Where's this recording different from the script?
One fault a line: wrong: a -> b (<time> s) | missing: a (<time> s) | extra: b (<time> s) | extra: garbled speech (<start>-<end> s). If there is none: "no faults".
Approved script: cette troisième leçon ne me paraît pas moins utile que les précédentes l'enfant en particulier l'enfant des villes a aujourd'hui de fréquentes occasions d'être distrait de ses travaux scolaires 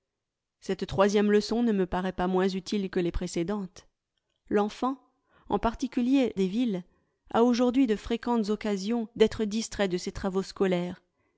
missing: l'enfant (6.4 s)